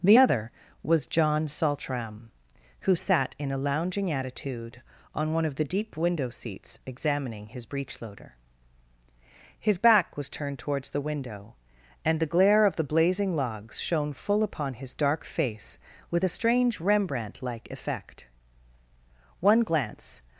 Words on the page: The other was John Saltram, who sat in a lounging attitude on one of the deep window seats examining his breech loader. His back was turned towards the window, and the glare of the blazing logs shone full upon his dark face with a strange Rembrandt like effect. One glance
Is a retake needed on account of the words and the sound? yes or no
no